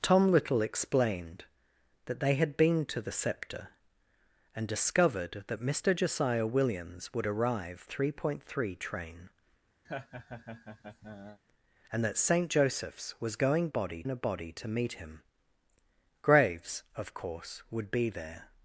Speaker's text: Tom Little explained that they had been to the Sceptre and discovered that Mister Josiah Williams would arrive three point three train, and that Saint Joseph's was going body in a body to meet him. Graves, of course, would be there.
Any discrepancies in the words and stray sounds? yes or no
yes